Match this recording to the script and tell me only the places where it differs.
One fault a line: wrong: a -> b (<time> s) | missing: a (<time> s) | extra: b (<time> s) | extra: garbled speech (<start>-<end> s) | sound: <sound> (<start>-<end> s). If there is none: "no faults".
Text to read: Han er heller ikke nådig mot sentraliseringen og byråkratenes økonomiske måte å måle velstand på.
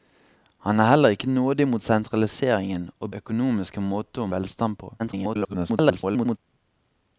missing: byråkratenes (3.1 s)
missing: måle (4.3 s)
extra: garbled speech (5.0-6.4 s)